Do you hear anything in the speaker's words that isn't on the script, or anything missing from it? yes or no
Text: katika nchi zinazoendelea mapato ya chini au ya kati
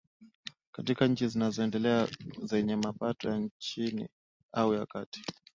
yes